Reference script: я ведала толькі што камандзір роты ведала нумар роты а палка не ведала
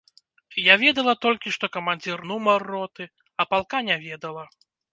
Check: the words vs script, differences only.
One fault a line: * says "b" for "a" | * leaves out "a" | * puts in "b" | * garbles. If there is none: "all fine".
* leaves out "роты ведала"